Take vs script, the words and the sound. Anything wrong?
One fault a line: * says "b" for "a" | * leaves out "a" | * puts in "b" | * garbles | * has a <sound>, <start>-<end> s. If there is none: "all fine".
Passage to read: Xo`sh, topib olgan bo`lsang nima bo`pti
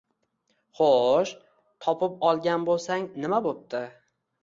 all fine